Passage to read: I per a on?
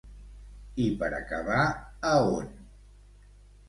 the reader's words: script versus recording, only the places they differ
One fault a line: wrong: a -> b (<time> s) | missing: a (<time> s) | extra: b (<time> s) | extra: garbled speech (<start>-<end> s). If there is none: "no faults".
extra: acabar (1.2 s)